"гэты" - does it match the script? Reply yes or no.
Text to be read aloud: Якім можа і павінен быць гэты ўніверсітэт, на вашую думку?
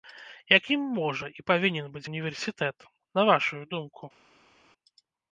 no